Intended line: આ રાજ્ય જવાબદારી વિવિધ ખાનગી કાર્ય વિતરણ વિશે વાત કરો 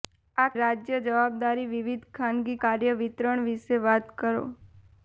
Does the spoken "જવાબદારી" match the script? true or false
true